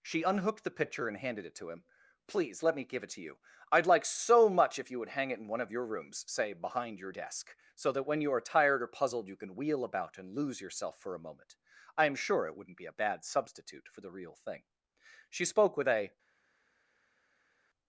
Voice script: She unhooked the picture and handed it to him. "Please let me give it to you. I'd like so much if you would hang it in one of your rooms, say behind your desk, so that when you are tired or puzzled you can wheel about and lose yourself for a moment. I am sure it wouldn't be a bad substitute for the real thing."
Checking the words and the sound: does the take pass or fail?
fail